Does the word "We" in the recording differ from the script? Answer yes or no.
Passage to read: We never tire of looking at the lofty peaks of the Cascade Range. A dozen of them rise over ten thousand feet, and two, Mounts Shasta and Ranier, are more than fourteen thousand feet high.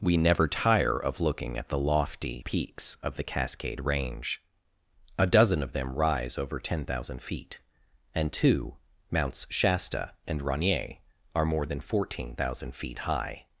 no